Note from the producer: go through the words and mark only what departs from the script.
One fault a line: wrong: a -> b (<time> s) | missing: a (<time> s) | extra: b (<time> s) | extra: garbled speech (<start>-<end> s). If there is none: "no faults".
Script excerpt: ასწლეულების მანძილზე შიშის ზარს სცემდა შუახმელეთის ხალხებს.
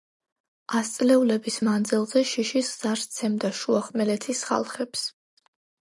no faults